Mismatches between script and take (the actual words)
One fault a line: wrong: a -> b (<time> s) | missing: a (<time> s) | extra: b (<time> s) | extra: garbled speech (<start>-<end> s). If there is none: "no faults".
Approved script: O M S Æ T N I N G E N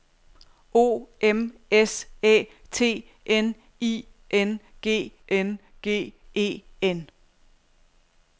extra: N G (5.3 s)